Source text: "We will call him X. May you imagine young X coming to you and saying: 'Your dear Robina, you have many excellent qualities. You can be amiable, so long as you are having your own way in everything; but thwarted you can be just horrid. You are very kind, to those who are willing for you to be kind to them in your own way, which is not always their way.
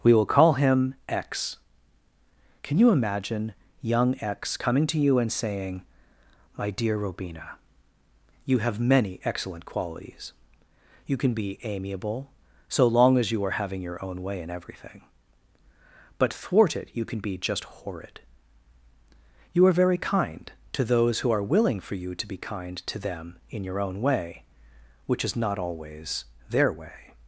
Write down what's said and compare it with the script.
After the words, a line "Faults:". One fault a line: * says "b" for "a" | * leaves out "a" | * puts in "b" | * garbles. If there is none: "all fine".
"We will call him X. Can you imagine young X coming to you and saying: 'My dear Robina, you have many excellent qualities. You can be amiable, so long as you are having your own way in everything; but thwarted you can be just horrid. You are very kind, to those who are willing for you to be kind to them in your own way, which is not always their way.
Faults:
* says "Can" for "May"
* says "My" for "Your"